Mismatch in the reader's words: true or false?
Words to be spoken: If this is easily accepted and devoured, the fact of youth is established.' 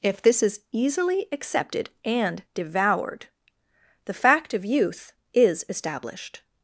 false